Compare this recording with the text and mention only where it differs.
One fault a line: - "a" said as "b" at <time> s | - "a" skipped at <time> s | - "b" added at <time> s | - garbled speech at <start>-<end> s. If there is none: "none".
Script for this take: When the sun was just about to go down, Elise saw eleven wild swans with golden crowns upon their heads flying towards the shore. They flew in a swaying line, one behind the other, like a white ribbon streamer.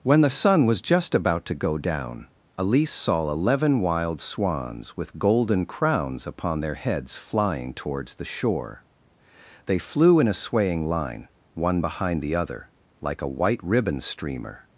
none